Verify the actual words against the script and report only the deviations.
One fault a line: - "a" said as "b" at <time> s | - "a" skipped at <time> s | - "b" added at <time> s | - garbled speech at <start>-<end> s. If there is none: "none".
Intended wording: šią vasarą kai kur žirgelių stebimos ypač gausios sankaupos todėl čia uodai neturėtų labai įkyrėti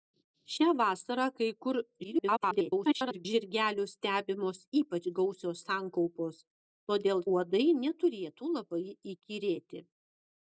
- garbled speech at 2.0-3.3 s
- "čia" skipped at 7.2 s